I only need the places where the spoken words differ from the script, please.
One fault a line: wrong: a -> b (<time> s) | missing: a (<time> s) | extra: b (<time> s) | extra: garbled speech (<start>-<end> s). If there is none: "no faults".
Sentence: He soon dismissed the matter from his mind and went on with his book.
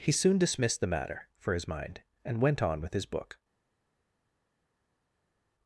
wrong: from -> for (1.4 s)